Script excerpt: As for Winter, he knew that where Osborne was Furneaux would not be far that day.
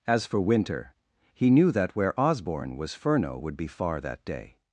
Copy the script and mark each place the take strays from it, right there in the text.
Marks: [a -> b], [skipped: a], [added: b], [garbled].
As for Winter, he knew that where Osborne was Furneaux would [skipped: not] be far that day.